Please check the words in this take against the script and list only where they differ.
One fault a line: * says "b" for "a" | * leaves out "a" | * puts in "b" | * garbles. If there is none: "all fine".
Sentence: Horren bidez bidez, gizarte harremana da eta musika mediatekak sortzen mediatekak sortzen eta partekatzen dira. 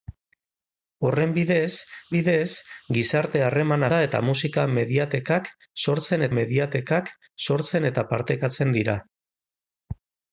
all fine